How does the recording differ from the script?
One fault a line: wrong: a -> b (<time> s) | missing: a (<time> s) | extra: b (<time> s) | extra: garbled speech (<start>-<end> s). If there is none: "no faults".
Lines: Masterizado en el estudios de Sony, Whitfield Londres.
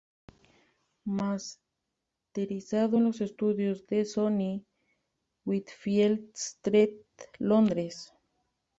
wrong: el -> los (3.0 s)
extra: Street (6.3 s)